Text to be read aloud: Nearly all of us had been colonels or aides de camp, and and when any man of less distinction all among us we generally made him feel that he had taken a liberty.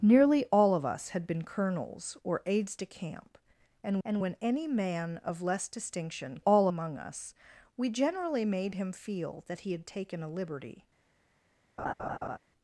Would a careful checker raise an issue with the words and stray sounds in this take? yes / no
yes